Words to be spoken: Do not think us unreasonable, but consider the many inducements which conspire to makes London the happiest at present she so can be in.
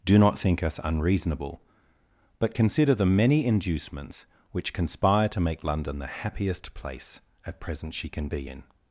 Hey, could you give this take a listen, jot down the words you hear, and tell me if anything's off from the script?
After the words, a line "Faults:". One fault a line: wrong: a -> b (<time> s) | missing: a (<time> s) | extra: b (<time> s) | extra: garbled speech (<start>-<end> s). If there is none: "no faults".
Do not think us unreasonable, but consider the many inducements which conspire to make London the happiest place at present she can be in.
Faults:
wrong: makes -> make (5.4 s)
extra: place (6.7 s)
missing: so (8.1 s)